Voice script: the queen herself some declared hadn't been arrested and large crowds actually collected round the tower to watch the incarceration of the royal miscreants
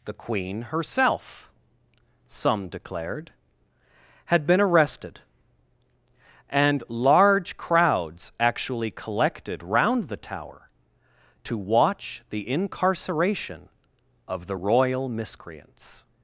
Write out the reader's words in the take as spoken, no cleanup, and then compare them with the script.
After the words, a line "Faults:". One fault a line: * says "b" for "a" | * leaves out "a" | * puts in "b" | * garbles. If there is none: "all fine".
the queen herself some declared had been arrested and large crowds actually collected round the tower to watch the incarceration of the royal miscreants
Faults:
* says "had" for "hadn't"